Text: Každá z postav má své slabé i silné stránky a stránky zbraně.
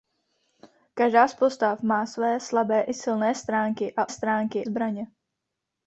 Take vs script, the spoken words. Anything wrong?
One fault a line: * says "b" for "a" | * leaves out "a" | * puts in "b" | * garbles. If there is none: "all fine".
all fine